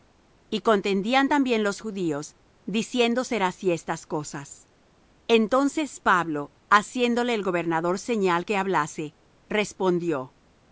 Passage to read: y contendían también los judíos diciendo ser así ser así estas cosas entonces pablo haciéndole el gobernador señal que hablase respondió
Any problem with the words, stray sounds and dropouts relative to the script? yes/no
yes